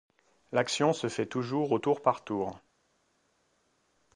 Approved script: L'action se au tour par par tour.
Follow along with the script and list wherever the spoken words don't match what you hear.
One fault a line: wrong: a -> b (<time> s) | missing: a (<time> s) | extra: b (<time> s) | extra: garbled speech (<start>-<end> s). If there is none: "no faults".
extra: fait toujours (1.1 s)
missing: par (2.2 s)